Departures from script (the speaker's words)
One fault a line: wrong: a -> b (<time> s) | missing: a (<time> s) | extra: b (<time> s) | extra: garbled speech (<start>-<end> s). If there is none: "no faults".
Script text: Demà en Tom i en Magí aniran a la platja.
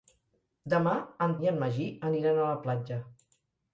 missing: Tom (1.4 s)